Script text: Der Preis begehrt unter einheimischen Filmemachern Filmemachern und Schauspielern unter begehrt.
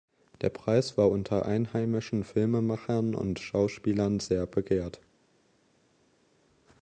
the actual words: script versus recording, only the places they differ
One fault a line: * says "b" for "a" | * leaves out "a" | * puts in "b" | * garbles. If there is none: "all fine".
* says "war" for "begehrt"
* leaves out "Filmemachern"
* says "sehr" for "unter"